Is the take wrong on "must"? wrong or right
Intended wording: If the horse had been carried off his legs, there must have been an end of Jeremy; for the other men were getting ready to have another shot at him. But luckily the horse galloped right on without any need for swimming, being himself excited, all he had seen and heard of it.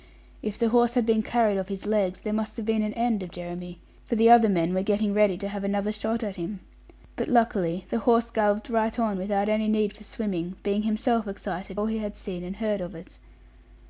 right